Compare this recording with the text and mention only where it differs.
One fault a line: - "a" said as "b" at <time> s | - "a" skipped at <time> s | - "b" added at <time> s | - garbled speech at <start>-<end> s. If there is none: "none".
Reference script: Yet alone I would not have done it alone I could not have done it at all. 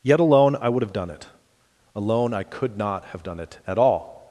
- "not" skipped at 0.8 s